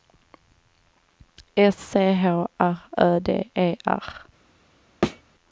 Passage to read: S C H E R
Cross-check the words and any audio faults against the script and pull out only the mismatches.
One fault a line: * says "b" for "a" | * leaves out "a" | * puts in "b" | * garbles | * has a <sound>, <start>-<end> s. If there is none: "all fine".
* puts in "R Ö D"
* has a thud, 5.0-5.2 s